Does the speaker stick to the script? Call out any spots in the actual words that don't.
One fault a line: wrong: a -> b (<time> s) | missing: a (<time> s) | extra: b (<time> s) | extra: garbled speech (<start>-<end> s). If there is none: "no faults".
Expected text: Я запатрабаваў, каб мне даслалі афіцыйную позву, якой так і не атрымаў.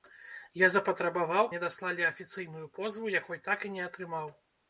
missing: каб (1.5 s)